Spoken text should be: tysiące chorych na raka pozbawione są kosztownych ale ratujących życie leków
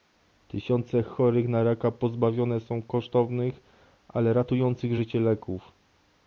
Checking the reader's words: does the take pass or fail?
pass